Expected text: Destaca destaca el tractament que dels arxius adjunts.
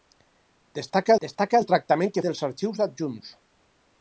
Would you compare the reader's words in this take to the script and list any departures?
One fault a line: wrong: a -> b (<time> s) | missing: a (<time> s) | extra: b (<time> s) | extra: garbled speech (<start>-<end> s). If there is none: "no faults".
no faults